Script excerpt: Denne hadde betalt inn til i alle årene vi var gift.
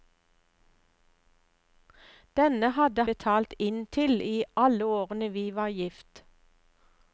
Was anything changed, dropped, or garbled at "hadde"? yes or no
no